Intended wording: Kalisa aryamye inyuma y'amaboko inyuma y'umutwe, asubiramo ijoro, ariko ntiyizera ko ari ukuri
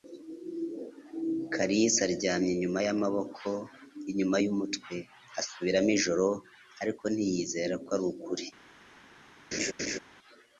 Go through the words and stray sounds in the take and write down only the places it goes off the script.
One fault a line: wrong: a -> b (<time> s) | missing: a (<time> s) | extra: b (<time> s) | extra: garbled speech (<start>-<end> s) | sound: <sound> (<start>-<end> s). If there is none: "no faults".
sound: laugh (9.5-10.0 s)